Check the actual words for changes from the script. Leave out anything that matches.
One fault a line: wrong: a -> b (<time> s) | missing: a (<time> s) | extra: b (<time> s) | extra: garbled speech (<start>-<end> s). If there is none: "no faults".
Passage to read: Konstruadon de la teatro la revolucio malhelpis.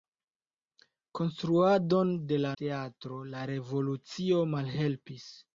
no faults